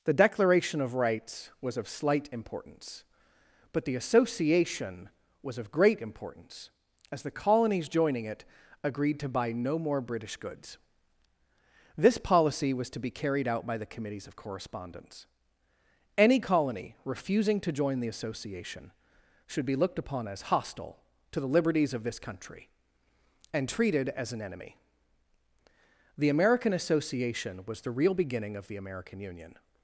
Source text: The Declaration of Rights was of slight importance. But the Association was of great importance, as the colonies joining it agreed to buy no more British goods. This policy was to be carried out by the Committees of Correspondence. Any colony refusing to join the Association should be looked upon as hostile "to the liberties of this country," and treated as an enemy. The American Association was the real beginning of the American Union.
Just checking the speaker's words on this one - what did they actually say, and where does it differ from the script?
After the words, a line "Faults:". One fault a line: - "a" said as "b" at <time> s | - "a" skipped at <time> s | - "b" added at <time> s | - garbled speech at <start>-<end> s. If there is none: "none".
The Declaration of Rights was of slight importance. But the Association was of great importance, as the colonies joining it agreed to buy no more British goods. This policy was to be carried out by the Committees of Correspondence. Any colony refusing to join the Association should be looked upon as hostile "to the liberties of this country," and treated as an enemy. The American Association was the real beginning of the American Union.
Faults:
none